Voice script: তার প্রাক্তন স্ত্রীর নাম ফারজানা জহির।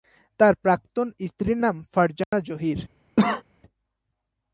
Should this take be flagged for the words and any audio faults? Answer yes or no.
yes